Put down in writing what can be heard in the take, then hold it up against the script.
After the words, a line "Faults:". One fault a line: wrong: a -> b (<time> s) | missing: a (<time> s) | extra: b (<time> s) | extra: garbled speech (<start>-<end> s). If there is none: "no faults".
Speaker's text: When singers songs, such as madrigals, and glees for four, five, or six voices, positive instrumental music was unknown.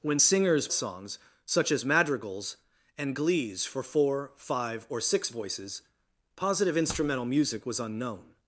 When singers songs, such as madrigals, and glees for four, five, or six voices, positive instrumental music was unknown.
Faults:
no faults